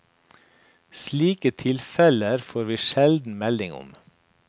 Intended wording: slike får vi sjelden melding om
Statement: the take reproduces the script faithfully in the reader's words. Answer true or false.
false